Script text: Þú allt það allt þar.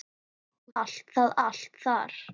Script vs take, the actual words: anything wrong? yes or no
no